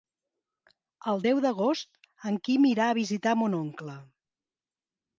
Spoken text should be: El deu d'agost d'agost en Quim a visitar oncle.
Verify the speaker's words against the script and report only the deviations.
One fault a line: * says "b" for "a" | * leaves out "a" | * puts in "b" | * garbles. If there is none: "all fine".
* leaves out "d'agost"
* puts in "irà"
* puts in "mon"